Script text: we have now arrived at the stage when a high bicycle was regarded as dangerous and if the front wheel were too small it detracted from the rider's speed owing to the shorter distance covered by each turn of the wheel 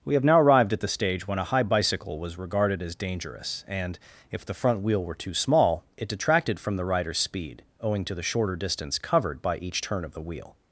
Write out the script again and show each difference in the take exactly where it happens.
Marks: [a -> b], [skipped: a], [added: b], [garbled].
we have now arrived at the stage when a high bicycle was regarded as dangerous and if the front wheel were too small it detracted from the rider's speed owing to the shorter distance covered by each turn of the wheel